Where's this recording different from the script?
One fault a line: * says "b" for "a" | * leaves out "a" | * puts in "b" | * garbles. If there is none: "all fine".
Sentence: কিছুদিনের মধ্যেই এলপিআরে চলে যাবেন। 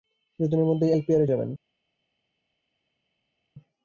* leaves out "চলে"